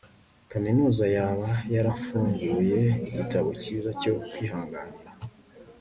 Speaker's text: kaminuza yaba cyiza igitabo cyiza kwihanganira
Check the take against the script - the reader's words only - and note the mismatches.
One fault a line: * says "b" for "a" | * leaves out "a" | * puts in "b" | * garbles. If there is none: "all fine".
* says "yarafunguye" for "cyiza"
* puts in "cyo"